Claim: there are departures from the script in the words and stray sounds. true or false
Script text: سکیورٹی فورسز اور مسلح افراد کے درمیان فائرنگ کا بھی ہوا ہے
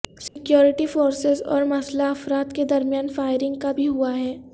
true